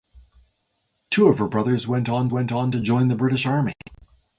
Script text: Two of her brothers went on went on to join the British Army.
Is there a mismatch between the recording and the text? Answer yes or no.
no